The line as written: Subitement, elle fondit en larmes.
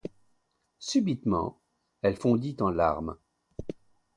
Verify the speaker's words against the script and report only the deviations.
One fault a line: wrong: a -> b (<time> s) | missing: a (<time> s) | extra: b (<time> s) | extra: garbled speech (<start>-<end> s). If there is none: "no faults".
no faults